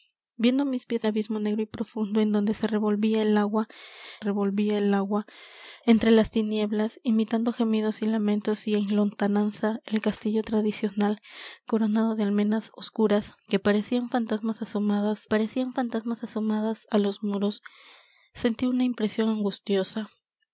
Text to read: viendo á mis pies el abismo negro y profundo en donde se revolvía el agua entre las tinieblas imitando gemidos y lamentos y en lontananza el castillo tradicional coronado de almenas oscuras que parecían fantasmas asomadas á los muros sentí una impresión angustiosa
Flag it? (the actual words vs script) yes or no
yes